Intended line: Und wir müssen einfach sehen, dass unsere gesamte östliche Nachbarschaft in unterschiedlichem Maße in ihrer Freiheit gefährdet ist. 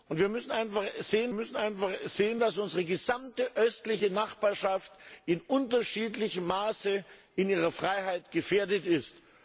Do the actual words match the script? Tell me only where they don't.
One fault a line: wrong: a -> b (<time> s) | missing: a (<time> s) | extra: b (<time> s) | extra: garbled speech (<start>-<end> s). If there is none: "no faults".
extra: müssen einfach sehen (1.3 s)